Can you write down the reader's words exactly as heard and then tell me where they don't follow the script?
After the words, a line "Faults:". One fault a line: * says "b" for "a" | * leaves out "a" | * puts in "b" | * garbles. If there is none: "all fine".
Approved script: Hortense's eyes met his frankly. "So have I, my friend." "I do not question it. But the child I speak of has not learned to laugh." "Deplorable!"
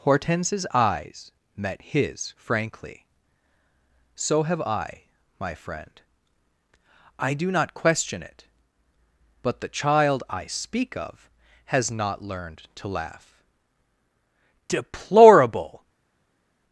Hortense's eyes met his frankly. "So have I, my friend." "I do not question it. But the child I speak of has not learned to laugh." "Deplorable!"
Faults:
all fine